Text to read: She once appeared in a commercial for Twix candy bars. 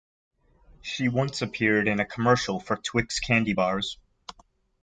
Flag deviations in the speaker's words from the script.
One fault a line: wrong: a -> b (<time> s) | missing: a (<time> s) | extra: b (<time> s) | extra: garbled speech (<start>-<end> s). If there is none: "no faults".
no faults